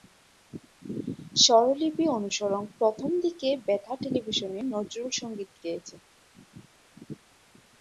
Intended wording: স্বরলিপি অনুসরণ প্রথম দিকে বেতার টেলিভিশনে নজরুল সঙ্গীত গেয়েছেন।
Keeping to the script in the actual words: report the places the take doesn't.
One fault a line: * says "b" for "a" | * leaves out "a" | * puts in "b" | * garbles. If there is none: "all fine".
all fine